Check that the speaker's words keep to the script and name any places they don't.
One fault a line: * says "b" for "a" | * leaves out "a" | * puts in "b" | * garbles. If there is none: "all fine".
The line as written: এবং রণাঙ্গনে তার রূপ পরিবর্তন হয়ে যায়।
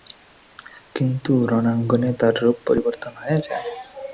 * says "কিন্তু" for "এবং"